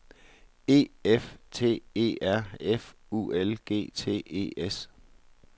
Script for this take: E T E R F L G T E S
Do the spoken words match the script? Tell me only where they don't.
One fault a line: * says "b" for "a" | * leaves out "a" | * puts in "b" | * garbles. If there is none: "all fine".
* puts in "F"
* puts in "U"